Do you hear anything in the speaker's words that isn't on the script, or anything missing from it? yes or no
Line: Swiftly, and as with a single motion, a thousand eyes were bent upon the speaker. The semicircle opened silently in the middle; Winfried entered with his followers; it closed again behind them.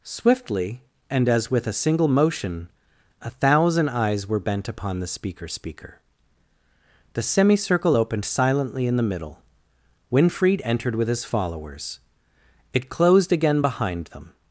yes